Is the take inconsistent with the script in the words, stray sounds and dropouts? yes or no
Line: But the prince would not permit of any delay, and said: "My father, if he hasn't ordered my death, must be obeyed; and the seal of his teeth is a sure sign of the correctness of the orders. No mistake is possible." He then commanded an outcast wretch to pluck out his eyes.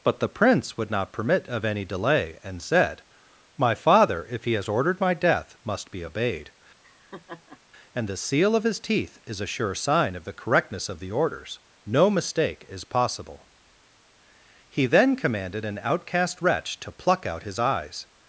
yes